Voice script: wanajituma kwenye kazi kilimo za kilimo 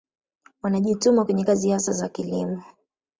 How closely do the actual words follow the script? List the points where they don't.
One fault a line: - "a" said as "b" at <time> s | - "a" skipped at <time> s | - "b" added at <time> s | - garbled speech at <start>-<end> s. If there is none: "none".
- "kilimo" said as "hasa" at 1.7 s